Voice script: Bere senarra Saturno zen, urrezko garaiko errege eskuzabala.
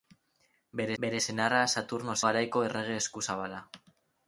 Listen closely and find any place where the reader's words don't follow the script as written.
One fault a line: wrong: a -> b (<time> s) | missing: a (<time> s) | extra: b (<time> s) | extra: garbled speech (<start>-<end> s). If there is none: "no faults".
extra: bere (1.0 s)
missing: zen urrezko (2.2 s)